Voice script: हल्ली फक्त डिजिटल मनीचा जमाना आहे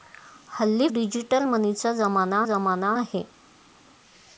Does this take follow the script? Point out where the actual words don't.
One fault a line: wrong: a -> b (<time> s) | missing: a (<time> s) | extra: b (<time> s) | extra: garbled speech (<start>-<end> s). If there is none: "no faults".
missing: फक्त (0.9 s)
extra: जमाना (2.4 s)